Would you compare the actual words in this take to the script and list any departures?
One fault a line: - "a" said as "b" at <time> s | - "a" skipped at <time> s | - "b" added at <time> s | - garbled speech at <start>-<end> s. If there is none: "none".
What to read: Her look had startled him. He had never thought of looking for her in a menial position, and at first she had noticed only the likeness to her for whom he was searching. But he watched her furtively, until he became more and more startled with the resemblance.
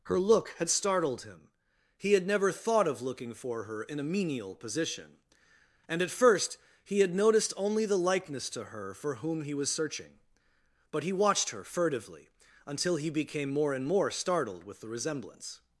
- "she" said as "he" at 6.8 s